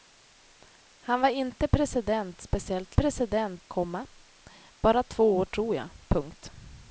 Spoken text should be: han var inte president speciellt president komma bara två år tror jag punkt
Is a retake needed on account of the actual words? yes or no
no